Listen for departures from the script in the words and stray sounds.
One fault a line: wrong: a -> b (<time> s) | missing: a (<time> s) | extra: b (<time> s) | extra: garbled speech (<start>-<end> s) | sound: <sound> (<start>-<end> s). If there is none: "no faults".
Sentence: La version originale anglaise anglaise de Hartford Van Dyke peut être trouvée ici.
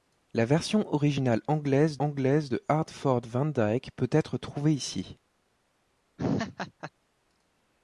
sound: laugh (6.2-6.9 s)